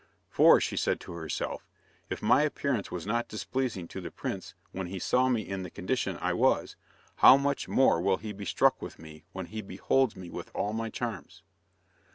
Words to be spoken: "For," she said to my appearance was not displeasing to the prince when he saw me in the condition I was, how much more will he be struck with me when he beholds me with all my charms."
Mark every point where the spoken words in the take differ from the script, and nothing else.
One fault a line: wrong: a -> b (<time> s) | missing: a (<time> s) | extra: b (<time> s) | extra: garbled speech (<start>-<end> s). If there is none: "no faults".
extra: herself if (1.1 s)